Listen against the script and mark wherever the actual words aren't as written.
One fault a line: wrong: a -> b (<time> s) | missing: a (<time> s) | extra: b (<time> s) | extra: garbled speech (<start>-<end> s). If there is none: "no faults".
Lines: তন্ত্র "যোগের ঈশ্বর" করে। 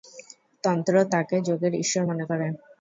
extra: তাঁকে (1.1 s)
extra: মনে (2.0 s)